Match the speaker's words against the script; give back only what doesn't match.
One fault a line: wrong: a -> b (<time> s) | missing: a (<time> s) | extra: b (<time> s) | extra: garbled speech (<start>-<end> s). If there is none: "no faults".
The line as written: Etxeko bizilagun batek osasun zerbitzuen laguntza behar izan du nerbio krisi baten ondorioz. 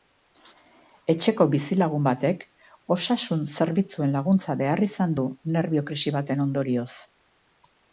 no faults